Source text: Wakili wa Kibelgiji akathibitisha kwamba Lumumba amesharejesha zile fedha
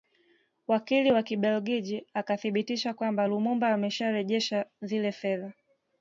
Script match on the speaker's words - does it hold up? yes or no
yes